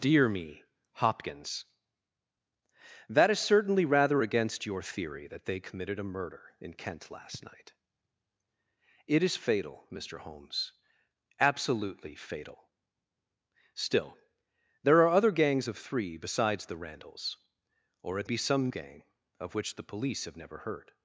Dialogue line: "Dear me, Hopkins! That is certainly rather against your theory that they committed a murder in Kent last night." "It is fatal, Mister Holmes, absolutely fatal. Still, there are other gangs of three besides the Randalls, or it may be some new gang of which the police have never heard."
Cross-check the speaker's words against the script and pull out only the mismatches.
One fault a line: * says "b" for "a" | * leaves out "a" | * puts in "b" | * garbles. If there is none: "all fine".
* leaves out "may"
* leaves out "new"